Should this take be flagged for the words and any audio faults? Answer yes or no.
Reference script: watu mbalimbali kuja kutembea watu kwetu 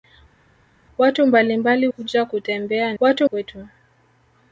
no